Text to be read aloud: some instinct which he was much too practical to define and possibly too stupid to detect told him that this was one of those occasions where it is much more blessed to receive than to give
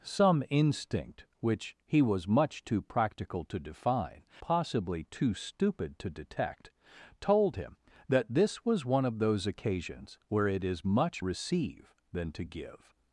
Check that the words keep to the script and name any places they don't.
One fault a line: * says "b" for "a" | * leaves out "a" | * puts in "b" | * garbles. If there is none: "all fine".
* leaves out "and"
* leaves out "more blessed to"